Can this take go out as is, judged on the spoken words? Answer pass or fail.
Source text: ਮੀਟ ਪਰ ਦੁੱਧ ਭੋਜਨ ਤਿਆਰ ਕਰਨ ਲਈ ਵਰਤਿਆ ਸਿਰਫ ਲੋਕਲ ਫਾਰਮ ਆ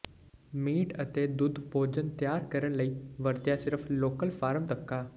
fail